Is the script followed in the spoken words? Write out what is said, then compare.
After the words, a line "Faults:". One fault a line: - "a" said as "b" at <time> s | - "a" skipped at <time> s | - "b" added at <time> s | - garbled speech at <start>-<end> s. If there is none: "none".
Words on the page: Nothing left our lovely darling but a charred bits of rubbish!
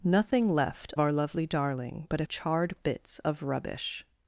Nothing left our lovely darling but a charred bits of rubbish!
Faults:
none